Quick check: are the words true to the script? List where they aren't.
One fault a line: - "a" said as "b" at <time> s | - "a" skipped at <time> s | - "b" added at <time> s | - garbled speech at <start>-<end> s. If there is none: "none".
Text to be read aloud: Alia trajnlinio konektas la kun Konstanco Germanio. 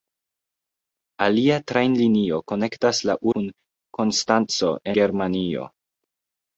none